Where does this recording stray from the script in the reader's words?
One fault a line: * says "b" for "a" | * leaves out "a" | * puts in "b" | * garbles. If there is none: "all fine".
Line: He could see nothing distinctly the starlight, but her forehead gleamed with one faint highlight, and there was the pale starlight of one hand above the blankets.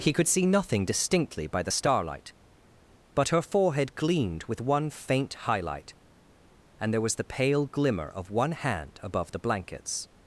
* puts in "by"
* says "glimmer" for "starlight"